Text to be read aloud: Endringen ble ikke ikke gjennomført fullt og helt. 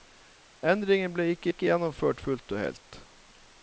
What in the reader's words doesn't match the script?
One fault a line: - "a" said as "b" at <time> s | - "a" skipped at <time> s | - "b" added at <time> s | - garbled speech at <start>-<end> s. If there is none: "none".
none